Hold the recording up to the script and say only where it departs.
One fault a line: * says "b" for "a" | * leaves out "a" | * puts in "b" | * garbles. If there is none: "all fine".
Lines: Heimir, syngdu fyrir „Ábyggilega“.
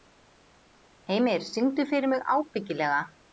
* puts in "mig"